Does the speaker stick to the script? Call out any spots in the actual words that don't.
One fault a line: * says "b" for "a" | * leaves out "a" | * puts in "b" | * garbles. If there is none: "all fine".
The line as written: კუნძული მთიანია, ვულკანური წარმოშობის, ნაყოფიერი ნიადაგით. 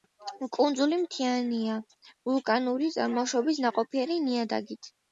all fine